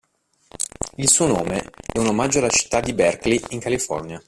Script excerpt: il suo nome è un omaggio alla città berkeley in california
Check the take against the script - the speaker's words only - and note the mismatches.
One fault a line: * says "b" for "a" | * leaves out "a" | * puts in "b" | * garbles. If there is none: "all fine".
* puts in "di"